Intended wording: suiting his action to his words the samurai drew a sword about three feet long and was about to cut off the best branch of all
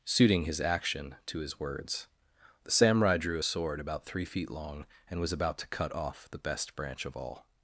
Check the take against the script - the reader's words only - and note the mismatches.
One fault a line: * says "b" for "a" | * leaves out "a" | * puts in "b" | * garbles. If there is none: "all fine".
all fine